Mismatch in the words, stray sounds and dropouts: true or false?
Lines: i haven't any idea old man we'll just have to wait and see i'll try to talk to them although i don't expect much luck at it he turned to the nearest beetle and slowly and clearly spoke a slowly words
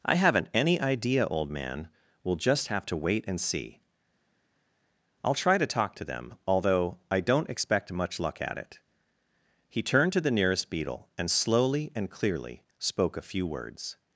true